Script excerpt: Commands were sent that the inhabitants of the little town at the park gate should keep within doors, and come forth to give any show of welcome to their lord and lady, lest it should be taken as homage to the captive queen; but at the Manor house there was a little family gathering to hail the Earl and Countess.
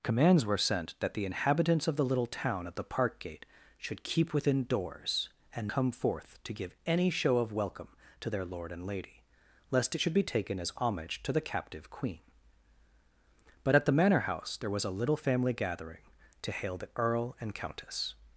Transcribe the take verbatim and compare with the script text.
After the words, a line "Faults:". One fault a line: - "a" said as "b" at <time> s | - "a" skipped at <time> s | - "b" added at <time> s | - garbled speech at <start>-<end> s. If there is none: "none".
Commands were sent that the inhabitants of the little town at the park gate should keep within doors, and come forth to give any show of welcome to their lord and lady, lest it should be taken as homage to the captive queen; but at the Manor house there was a little family gathering to hail the Earl and Countess.
Faults:
none